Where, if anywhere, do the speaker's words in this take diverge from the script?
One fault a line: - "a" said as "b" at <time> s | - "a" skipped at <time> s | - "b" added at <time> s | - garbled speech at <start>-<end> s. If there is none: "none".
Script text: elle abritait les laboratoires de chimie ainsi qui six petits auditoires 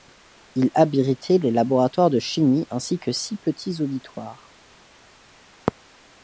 - "elle" said as "il" at 0.6 s
- "qui" said as "que" at 3.0 s